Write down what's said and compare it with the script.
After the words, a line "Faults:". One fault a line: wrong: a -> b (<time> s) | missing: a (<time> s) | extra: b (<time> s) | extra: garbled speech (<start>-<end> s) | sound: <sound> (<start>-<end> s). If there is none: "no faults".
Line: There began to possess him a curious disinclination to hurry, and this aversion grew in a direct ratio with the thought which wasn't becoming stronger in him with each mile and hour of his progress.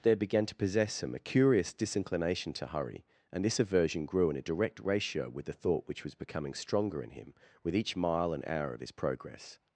There began to possess him a curious disinclination to hurry, and this aversion grew in a direct ratio with the thought which was becoming stronger in him with each mile and hour of his progress.
Faults:
wrong: wasn't -> was (6.0 s)